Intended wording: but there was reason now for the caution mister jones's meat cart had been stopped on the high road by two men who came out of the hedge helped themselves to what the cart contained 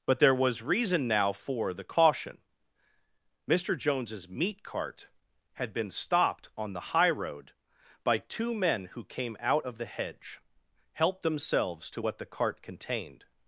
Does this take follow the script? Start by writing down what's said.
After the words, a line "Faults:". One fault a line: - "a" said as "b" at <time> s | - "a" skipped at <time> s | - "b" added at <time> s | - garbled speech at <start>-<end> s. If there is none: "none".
but there was reason now for the caution mister jones's meat cart had been stopped on the high road by two men who came out of the hedge helped themselves to what the cart contained
Faults:
none